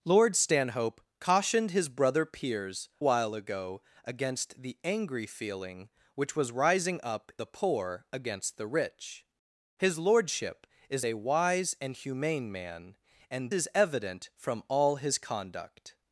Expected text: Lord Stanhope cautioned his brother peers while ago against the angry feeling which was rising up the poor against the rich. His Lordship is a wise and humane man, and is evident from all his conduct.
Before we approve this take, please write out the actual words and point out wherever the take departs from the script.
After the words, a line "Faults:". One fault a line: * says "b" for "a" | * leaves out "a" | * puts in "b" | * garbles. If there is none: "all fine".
Lord Stanhope cautioned his brother peers while ago against the angry feeling which was rising up the poor against the rich. His Lordship is a wise and humane man, and is evident from all his conduct.
Faults:
all fine